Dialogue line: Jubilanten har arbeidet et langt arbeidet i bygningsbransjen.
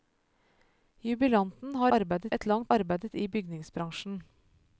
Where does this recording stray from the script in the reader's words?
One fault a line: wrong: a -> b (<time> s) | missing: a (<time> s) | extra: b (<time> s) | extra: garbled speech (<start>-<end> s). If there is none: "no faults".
no faults